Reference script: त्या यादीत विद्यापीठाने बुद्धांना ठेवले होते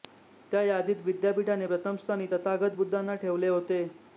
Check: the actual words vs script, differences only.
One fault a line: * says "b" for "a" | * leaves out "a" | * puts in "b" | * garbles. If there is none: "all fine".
* puts in "प्रथम स्थानी तथागत"